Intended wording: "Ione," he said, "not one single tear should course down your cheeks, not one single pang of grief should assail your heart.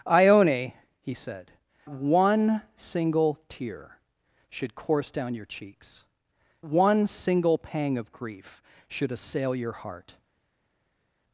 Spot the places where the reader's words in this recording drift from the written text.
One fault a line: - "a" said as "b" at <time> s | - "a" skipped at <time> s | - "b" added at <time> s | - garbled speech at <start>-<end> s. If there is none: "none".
- "not" skipped at 1.5 s
- "not" skipped at 6.0 s